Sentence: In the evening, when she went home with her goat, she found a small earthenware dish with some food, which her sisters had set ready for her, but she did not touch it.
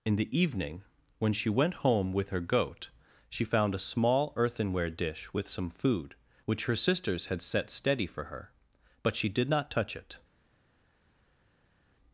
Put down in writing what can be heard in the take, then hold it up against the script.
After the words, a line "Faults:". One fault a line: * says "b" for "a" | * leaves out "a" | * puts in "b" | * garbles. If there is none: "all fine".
In the evening, when she went home with her goat, she found a small earthenware dish with some food, which her sisters had set steady for her, but she did not touch it.
Faults:
* says "steady" for "ready"